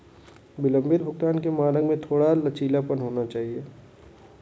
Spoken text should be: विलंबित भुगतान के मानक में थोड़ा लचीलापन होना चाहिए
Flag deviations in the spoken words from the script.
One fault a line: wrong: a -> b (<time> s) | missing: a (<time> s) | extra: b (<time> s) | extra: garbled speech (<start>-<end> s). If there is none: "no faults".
no faults